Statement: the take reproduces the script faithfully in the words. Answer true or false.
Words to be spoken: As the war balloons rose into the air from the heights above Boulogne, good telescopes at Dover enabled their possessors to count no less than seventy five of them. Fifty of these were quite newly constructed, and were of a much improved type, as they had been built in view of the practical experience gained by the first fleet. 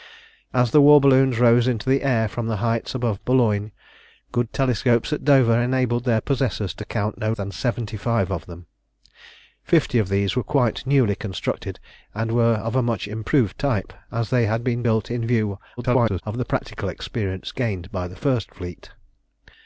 false